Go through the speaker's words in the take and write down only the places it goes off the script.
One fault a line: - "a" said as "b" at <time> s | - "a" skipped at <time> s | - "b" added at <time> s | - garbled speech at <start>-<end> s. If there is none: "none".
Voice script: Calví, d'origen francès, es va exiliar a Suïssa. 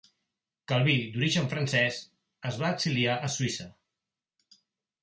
none